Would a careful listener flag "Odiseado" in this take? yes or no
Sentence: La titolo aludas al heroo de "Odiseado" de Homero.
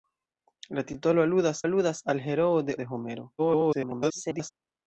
yes